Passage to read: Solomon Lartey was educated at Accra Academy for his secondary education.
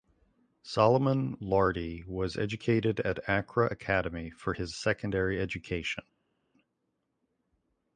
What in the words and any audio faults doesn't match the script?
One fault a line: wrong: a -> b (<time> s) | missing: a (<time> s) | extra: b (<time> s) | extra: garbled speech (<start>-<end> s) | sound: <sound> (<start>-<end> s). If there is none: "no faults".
no faults